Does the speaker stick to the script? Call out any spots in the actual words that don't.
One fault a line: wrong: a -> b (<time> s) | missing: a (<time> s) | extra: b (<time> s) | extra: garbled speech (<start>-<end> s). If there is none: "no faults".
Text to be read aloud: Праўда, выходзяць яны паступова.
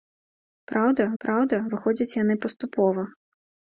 extra: праўда (1.2 s)